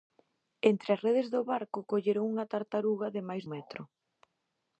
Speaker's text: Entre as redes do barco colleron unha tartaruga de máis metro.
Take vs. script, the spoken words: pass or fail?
pass